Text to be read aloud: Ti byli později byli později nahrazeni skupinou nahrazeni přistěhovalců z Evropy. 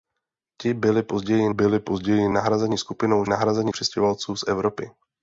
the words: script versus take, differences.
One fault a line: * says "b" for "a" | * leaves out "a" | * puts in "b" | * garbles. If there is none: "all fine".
all fine